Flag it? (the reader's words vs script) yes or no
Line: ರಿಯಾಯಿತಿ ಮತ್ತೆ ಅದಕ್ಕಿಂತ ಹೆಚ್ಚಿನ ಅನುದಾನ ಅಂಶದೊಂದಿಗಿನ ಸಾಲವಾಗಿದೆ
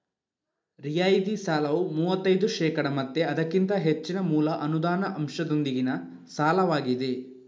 yes